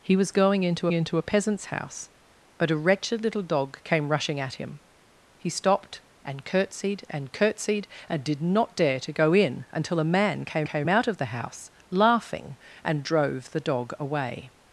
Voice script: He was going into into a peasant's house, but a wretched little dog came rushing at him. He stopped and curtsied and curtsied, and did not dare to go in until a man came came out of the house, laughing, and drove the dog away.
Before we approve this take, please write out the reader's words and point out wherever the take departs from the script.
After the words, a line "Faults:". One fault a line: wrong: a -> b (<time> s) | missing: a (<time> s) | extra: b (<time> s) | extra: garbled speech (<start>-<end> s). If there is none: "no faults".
He was going into into a peasant's house, but a wretched little dog came rushing at him. He stopped and curtsied and curtsied, and did not dare to go in until a man came came out of the house, laughing, and drove the dog away.
Faults:
no faults